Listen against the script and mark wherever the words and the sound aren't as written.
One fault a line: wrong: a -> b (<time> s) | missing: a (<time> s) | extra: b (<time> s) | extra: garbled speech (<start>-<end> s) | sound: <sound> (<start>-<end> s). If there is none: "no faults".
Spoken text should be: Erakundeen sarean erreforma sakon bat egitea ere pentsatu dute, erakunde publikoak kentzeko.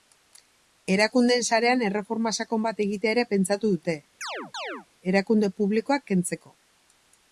sound: chirp (4.2-4.9 s)